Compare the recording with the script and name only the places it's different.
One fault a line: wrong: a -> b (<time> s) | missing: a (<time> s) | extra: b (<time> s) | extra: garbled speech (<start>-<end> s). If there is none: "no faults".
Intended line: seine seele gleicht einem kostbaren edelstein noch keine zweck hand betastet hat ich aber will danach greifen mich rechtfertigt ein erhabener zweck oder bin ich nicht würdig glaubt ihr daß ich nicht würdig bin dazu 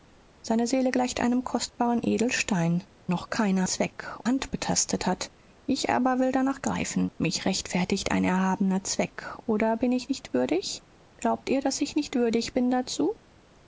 no faults